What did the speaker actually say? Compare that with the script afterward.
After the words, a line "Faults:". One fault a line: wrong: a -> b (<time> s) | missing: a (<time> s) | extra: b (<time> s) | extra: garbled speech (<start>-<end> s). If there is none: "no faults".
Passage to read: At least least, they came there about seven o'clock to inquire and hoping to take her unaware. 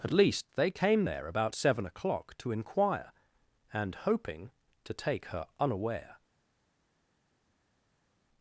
At least, they came there about seven o'clock to inquire and hoping to take her unaware.
Faults:
missing: least (0.5 s)